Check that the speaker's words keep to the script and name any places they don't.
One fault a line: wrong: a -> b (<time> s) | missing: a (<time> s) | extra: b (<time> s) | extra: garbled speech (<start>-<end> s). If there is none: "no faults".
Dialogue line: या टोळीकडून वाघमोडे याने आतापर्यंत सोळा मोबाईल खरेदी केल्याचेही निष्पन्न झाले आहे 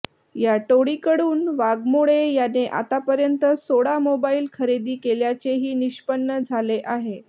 no faults